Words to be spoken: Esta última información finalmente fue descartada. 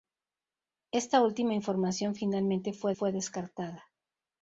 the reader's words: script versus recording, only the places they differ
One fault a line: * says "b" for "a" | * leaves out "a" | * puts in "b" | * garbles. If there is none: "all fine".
* puts in "fue"